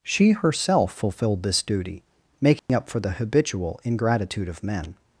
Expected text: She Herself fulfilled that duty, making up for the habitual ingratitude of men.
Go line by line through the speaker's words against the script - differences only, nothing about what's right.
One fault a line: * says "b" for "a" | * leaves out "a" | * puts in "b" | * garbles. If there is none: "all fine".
* says "this" for "that"